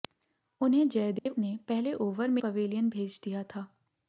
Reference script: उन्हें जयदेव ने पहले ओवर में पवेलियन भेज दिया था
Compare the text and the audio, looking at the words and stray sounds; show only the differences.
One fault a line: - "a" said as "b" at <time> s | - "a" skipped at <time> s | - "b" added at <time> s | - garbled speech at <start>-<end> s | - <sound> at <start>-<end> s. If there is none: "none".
- dropout at 1.2-1.3 s